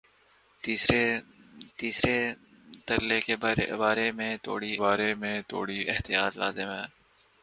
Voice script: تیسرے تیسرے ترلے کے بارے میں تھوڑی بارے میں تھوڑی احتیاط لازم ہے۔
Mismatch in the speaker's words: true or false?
false